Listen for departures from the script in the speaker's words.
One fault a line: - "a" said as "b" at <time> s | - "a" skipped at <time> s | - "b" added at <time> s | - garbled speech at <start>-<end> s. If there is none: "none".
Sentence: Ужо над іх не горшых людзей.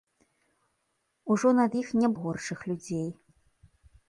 none